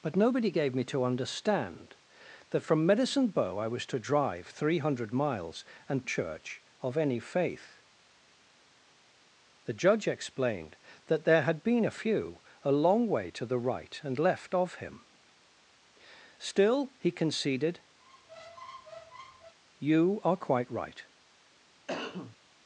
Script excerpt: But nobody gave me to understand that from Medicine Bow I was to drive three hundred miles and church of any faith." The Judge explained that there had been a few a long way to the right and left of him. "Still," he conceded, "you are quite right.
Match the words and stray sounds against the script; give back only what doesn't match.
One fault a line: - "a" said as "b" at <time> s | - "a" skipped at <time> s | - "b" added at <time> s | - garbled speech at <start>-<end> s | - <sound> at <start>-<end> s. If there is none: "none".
- squeak at 18.0-19.5 s
- cough at 21.9-22.4 s